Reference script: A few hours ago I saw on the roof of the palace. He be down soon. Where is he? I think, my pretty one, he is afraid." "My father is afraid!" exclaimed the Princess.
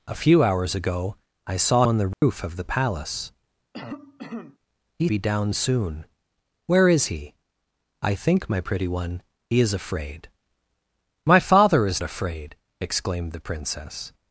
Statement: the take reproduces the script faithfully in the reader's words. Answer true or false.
true